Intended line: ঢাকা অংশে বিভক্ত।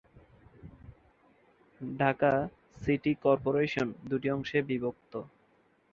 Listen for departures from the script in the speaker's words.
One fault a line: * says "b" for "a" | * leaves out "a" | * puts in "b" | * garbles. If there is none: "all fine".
* puts in "সিটি কর্পোরেশন দুটি"